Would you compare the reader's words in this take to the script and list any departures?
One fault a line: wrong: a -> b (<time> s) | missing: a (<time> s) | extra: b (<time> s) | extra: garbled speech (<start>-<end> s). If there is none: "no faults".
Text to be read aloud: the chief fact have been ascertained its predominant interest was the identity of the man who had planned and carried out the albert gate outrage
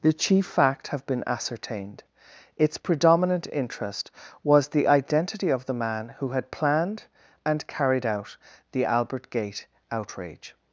no faults